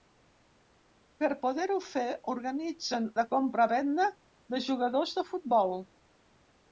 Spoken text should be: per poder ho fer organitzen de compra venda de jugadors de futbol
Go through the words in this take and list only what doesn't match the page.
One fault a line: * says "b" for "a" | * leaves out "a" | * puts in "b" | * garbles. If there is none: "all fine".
all fine